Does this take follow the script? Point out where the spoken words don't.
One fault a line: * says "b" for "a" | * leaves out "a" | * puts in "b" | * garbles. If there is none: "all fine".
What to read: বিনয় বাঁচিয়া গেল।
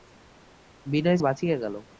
all fine